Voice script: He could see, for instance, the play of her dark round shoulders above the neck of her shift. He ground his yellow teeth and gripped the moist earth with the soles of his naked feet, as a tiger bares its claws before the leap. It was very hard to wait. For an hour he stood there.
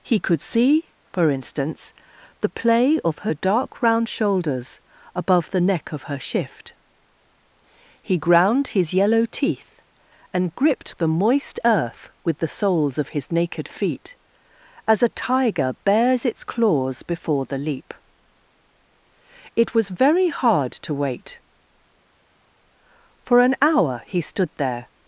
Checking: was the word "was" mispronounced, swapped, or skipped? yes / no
no